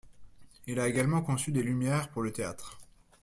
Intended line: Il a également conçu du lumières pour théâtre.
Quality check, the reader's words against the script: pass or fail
fail